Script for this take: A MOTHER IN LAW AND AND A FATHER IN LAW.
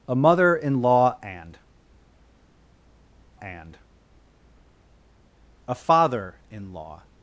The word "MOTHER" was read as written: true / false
true